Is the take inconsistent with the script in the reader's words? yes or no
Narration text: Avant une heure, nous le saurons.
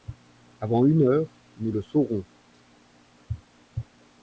no